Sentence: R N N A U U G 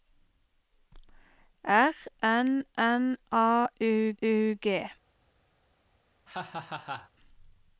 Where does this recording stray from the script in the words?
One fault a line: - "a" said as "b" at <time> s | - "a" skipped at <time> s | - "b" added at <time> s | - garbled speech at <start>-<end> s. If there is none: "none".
none